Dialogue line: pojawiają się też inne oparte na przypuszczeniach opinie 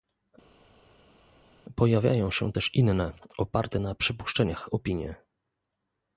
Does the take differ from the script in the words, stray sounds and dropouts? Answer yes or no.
no